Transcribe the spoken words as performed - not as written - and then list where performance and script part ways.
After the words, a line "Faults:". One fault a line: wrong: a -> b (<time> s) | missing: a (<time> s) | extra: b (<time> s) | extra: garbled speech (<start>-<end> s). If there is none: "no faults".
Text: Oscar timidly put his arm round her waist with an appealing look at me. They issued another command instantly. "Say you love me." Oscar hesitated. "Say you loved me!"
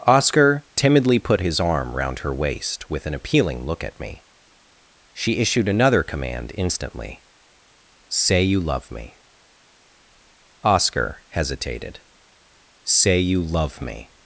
Oscar timidly put his arm round her waist with an appealing look at me. She issued another command instantly. "Say you love me." Oscar hesitated. "Say you love me!"
Faults:
wrong: They -> She (5.1 s)
wrong: loved -> love (13.4 s)